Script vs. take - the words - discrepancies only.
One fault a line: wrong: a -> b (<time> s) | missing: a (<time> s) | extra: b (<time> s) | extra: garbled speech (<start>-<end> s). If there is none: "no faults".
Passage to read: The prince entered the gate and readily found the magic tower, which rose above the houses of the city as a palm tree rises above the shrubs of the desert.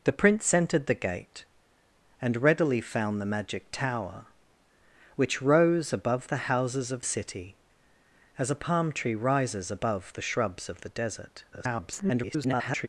missing: the (7.0 s)
extra: garbled speech (11.5-12.9 s)